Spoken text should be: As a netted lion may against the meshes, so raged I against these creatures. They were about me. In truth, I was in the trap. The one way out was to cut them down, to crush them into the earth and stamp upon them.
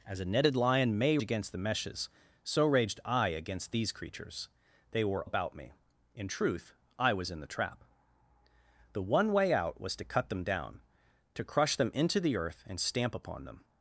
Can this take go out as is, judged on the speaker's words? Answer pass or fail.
pass